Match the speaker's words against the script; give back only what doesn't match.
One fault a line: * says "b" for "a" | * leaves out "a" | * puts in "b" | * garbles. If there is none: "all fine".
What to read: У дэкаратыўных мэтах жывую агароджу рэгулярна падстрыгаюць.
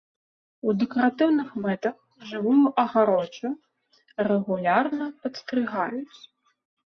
all fine